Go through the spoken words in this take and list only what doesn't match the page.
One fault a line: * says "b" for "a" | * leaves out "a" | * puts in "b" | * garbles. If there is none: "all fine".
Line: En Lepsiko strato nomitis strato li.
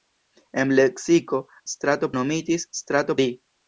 all fine